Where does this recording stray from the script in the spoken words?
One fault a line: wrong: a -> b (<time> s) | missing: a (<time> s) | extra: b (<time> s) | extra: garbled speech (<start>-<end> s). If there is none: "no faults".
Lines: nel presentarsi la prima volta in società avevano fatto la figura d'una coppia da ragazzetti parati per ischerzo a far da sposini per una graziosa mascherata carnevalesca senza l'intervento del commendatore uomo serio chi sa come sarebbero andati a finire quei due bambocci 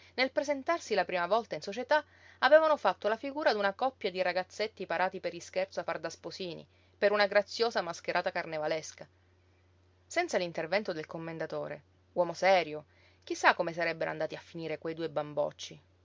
wrong: da -> di (4.1 s)